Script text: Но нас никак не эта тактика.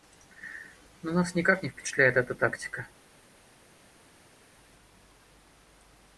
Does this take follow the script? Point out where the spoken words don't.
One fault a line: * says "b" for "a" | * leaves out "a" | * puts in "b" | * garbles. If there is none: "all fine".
* puts in "впечатляет"